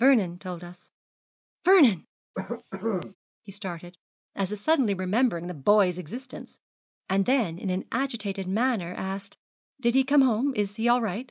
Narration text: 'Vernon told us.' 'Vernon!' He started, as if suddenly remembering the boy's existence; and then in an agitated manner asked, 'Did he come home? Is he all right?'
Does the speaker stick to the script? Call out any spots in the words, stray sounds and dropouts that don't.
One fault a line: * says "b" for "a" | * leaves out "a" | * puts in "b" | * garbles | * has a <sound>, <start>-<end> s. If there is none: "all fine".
* has a cough, 2.3-3.2 s